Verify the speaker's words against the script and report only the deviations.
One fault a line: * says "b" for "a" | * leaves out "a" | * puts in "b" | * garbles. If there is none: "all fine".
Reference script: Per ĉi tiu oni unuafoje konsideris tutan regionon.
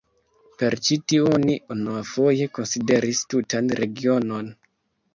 all fine